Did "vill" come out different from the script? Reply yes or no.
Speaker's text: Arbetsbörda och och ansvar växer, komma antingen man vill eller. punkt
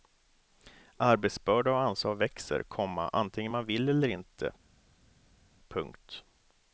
no